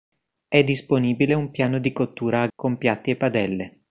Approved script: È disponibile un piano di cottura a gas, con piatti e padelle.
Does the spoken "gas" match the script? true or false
false